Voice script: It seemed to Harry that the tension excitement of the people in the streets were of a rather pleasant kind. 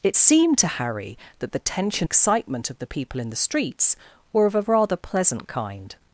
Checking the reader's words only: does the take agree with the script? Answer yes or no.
yes